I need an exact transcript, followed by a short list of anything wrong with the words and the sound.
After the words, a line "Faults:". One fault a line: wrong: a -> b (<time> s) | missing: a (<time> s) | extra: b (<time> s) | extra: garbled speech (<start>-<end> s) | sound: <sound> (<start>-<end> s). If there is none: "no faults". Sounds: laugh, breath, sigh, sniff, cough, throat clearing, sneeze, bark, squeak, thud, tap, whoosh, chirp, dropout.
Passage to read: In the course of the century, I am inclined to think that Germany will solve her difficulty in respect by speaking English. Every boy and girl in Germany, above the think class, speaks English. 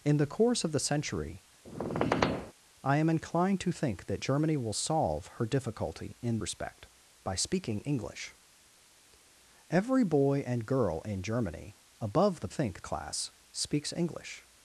In the course of the century, I am inclined to think that Germany will solve her difficulty in respect by speaking English. Every boy and girl in Germany, above the think class, speaks English.
Faults:
sound: squeak (1.6-2.5 s)